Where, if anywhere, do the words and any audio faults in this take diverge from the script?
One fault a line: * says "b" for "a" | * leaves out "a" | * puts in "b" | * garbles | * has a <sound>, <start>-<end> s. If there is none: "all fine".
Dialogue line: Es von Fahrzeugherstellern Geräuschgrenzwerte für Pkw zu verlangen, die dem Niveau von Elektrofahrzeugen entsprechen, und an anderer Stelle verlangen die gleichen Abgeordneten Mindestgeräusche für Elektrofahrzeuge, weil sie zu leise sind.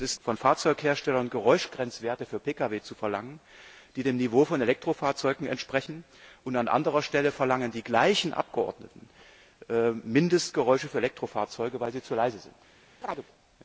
* has a chirp, 13.0-13.3 s